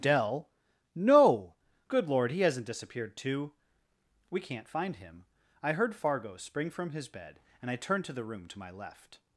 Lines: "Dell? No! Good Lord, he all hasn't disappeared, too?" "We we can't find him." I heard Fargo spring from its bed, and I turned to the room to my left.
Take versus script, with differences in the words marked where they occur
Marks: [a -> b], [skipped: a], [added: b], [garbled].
"Dell? No! Good Lord, he [skipped: all] hasn't disappeared, too?" "We [skipped: we] can't find him." I heard Fargo spring from [its -> his] bed, and I turned to the room to my left.